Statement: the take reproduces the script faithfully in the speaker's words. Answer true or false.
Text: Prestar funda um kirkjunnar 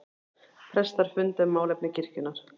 false